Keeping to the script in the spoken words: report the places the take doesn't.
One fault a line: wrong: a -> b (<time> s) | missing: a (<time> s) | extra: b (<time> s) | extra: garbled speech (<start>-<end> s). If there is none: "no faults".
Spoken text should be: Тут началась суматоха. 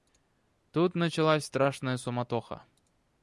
extra: страшная (1.4 s)